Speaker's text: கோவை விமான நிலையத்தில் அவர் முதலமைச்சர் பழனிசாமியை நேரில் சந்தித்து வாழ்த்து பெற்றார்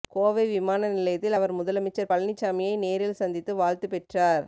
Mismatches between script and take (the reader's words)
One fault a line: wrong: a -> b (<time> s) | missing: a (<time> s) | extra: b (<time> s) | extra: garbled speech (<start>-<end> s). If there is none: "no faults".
no faults